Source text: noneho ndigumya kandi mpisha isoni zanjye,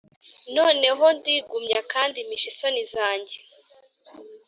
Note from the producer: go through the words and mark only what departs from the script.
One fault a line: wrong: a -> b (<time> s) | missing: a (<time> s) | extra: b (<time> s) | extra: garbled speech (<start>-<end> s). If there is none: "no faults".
no faults